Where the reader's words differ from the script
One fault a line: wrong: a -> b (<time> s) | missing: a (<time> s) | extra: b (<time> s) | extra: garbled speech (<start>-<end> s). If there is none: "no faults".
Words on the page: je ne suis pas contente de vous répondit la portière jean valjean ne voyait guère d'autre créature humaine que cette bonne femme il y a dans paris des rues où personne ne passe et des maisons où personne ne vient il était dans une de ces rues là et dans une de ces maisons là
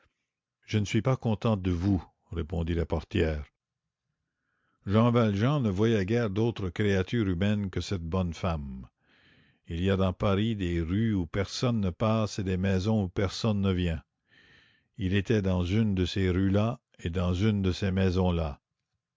no faults